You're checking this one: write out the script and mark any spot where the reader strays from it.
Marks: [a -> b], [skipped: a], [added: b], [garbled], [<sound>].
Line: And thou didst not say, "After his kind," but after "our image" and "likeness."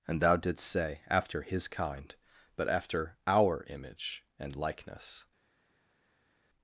And thou didst [skipped: not] say, "After his kind," but after "our image" and "likeness."